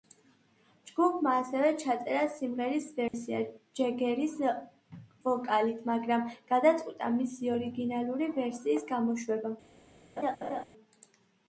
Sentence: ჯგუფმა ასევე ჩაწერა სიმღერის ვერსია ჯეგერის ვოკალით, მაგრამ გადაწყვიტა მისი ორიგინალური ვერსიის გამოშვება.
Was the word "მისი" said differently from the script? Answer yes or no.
no